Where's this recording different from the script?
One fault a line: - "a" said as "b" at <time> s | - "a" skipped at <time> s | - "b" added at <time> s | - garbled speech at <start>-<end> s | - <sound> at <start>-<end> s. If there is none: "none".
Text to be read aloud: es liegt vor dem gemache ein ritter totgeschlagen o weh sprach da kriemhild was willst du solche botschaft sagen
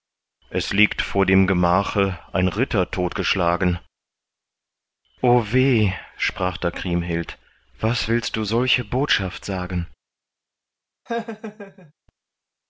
- laugh at 11.1-11.9 s